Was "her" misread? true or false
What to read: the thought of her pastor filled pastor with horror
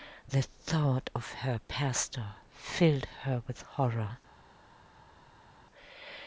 false